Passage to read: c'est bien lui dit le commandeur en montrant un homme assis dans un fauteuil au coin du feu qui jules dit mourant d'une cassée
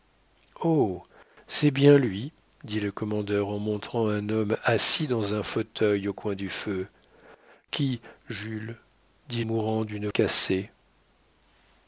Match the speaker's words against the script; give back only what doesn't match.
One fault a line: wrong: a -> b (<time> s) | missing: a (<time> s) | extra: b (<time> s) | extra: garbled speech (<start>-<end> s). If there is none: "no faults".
no faults